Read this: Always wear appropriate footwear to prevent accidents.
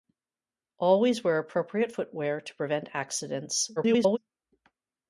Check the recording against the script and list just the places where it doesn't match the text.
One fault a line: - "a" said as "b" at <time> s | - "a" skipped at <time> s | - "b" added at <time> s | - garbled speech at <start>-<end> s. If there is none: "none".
- garbled speech at 3.8-4.2 s